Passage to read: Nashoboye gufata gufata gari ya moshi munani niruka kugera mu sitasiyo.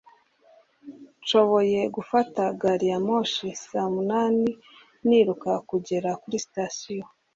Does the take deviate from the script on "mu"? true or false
true